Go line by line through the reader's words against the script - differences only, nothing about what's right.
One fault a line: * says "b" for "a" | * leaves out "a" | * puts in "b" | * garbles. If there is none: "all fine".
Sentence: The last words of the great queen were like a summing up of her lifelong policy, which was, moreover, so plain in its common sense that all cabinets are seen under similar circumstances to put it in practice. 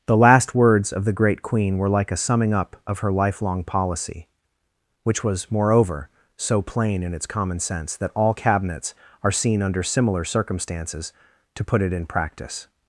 all fine